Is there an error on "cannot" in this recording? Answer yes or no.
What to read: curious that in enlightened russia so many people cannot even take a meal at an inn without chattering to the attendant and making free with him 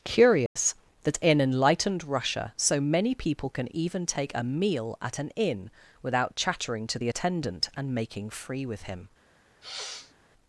yes